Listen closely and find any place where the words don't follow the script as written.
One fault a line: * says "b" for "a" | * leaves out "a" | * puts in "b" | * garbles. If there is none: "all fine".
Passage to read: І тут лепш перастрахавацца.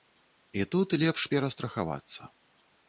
all fine